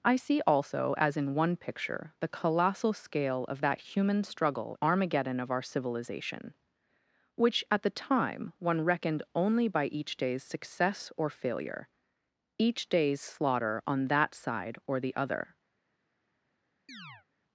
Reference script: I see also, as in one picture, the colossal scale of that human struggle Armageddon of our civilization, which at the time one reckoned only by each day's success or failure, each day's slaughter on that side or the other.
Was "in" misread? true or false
false